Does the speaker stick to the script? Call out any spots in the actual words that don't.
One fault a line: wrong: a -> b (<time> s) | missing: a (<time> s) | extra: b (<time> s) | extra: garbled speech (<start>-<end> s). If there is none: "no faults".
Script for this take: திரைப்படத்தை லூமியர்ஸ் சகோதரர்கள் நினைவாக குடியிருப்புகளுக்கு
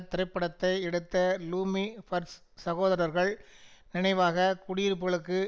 extra: எடுத்த (0.8 s)